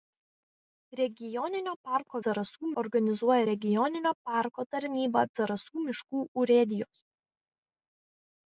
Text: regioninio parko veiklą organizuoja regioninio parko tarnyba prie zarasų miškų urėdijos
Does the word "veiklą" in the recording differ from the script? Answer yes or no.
yes